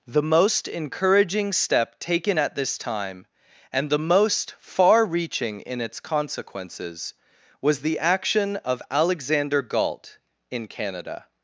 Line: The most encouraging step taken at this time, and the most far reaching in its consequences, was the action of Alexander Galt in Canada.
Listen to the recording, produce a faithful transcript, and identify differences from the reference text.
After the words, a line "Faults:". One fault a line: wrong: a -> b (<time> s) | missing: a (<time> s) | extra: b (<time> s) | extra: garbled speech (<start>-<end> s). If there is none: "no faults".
The most encouraging step taken at this time, and the most far reaching in its consequences, was the action of Alexander Galt in Canada.
Faults:
no faults